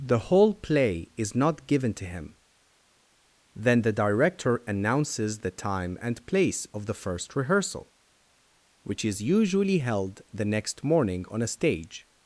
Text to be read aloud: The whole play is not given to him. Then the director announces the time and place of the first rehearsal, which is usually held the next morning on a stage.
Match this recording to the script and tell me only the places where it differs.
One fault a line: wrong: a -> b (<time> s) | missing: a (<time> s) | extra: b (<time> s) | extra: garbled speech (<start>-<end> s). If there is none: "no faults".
no faults